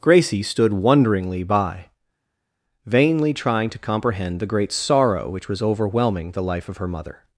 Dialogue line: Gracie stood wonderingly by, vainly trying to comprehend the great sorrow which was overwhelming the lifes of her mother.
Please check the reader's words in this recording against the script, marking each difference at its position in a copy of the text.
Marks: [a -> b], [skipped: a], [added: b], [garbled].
Gracie stood wonderingly by, vainly trying to comprehend the great sorrow which was overwhelming the [lifes -> life] of her mother.